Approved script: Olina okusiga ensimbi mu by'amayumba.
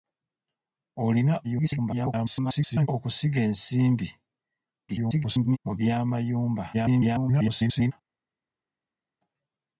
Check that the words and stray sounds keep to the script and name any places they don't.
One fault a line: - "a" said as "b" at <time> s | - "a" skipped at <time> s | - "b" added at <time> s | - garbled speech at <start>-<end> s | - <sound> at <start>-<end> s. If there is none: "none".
- garbled speech at 1.4-2.9 s
- garbled speech at 4.9-5.6 s
- garbled speech at 6.7-7.9 s